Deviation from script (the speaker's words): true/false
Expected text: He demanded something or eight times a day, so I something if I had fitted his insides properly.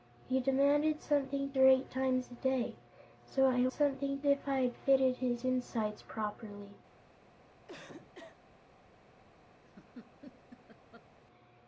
false